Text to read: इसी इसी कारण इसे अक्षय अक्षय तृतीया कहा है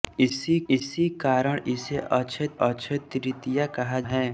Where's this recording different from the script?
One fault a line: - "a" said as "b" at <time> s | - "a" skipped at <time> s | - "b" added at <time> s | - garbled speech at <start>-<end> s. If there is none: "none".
none